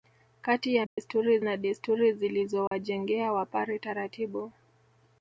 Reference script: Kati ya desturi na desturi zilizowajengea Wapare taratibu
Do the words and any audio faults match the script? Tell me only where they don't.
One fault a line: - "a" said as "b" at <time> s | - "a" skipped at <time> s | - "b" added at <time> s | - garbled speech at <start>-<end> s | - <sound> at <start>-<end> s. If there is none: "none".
- dropout at 0.9-1.0 s
- dropout at 2.7-2.7 s